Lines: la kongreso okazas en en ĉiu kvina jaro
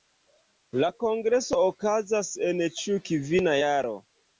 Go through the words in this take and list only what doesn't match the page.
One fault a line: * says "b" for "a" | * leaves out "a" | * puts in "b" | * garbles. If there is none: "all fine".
* leaves out "en"